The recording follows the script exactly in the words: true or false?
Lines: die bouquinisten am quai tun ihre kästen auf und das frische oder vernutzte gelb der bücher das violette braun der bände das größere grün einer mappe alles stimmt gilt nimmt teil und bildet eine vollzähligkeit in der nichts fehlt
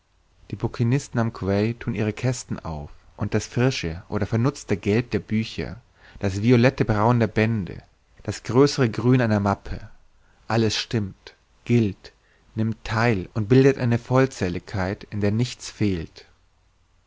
true